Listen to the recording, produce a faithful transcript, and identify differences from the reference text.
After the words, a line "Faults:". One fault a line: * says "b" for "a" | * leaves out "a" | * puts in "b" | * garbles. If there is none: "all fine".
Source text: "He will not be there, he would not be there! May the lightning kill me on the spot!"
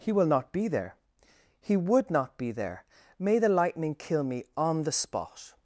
"He will not be there, he would not be there! May the lightning kill me on the spot!"
Faults:
all fine